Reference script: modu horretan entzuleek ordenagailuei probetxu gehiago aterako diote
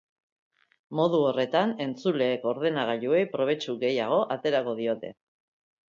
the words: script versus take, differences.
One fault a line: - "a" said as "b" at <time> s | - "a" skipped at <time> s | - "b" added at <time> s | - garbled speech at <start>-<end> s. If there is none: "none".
none